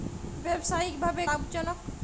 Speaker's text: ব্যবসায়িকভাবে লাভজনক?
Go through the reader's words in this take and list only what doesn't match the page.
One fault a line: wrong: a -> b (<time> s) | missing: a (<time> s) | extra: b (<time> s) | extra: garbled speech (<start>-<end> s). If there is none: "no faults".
no faults